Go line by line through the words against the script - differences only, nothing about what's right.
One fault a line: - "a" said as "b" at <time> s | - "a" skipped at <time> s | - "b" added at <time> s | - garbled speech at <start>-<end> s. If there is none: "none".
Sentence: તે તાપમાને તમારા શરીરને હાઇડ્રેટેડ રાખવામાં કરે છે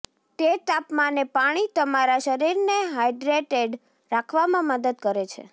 - "પાણી" added at 1.3 s
- "મદદ" added at 4.7 s